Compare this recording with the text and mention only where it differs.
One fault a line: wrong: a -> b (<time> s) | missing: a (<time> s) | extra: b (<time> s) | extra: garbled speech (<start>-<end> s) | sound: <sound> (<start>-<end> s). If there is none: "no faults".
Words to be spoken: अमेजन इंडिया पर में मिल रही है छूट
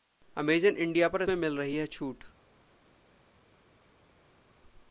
no faults